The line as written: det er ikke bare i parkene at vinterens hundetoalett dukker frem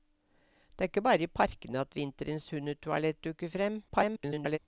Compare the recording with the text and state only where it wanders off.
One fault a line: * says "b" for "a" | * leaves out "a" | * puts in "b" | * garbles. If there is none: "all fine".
* garbles